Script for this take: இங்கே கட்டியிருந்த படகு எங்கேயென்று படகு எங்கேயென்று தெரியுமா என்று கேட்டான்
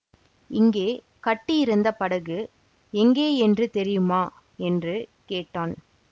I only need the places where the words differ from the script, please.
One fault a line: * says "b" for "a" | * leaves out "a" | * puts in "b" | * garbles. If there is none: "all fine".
* leaves out "படகு எங்கேயென்று"